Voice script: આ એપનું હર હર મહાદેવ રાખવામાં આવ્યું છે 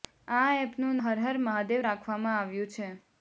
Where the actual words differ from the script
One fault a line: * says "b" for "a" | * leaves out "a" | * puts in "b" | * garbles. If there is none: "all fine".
all fine